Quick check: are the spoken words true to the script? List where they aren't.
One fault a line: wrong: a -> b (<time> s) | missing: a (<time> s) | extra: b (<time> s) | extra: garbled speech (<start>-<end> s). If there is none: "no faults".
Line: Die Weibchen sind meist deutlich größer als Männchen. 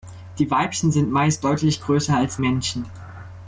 no faults